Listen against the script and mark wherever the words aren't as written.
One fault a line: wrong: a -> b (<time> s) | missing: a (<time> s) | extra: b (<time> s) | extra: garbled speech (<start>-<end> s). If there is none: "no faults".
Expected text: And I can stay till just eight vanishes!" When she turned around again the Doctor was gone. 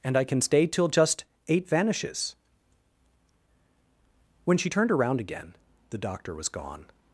no faults